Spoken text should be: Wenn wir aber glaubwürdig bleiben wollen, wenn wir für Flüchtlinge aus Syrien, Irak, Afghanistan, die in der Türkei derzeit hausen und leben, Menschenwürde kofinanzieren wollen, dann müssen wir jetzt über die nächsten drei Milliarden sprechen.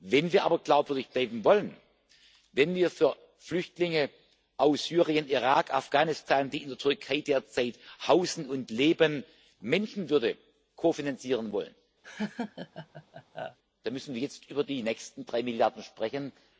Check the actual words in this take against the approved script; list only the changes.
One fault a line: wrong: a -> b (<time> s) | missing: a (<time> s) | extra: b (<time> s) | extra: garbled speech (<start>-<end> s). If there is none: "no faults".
no faults